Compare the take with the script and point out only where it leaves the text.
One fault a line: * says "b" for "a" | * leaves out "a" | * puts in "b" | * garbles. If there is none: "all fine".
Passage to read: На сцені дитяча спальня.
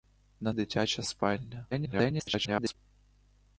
* leaves out "сцені"
* garbles